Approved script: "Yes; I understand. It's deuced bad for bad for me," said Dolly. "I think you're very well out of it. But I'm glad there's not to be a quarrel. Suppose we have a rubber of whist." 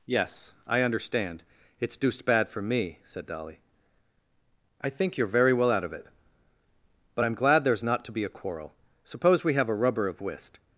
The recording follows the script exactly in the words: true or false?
false